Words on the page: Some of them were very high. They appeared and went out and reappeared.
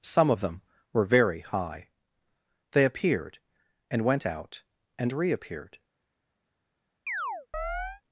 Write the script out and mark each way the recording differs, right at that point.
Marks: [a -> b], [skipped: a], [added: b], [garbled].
Some of them were very high. They appeared and went out and reappeared.